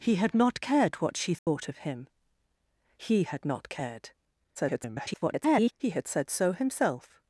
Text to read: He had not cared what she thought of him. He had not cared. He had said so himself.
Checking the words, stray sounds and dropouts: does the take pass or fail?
fail